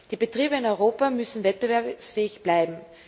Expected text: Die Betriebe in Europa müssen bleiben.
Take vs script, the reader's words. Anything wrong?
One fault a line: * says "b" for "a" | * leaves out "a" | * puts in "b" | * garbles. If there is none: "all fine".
* puts in "wettbewerbsfähig"